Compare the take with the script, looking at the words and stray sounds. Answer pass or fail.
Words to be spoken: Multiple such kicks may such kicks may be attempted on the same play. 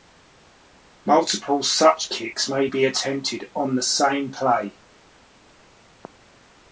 fail